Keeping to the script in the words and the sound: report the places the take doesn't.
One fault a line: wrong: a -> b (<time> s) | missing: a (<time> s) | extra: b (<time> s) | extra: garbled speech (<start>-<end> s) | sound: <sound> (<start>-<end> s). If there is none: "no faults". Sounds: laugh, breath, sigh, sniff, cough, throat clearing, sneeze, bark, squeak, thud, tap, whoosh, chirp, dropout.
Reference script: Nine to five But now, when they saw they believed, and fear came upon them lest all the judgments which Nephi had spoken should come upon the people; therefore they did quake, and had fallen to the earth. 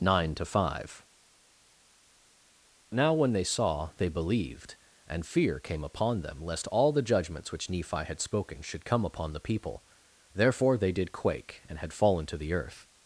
missing: But (1.1 s)